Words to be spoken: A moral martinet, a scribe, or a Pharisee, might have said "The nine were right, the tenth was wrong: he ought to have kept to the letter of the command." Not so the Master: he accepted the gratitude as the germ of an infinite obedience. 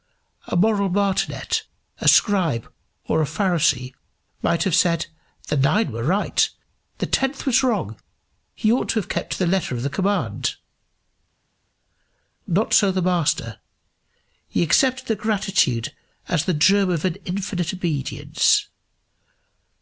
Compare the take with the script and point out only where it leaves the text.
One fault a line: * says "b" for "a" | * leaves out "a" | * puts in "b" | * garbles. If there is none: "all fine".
all fine